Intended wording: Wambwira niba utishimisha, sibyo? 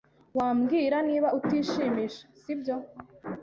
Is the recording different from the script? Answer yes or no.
no